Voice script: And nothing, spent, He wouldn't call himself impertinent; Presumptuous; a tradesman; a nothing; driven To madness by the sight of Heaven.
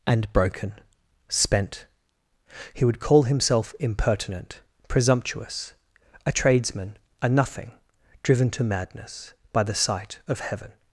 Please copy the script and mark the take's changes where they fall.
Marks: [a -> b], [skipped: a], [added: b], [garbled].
And [nothing, -> broken] spent, He [wouldn't -> would] call himself impertinent; Presumptuous; a tradesman; a nothing; driven To madness by the sight of Heaven.